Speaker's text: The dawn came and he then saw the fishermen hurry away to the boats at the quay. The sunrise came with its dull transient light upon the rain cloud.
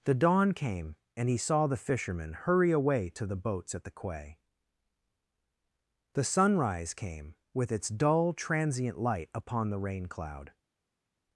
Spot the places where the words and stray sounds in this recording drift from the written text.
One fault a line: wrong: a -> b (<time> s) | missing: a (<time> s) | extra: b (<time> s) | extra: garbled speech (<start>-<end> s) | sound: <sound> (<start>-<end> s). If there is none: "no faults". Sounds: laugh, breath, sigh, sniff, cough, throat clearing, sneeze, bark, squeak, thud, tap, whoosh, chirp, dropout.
missing: then (1.4 s)